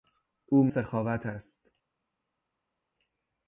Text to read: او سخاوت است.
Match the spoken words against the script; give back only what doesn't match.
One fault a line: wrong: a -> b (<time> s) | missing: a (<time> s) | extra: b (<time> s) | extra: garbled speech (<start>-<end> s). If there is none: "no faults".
no faults